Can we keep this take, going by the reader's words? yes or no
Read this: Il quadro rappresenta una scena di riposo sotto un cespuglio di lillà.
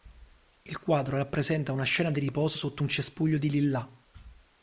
yes